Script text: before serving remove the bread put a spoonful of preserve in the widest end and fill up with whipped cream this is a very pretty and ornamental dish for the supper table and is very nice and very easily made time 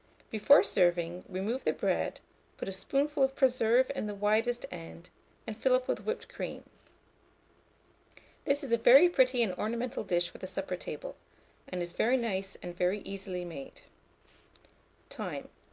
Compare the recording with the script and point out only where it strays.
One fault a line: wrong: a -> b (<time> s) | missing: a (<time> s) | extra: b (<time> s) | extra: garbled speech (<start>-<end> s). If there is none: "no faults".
no faults